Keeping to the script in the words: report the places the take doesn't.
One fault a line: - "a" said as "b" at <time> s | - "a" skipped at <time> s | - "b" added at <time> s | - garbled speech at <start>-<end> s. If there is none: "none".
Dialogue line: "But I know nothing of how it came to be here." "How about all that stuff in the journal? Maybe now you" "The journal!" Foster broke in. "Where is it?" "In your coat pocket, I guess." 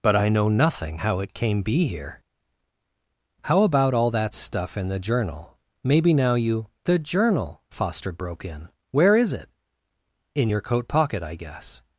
- "of" skipped at 1.0 s
- "to" skipped at 1.6 s